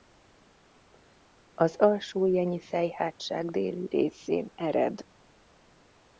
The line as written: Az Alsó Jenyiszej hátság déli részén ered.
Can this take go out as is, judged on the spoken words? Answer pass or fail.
pass